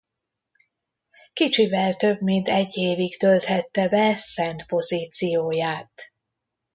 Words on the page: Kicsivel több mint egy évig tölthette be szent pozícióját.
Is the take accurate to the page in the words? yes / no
yes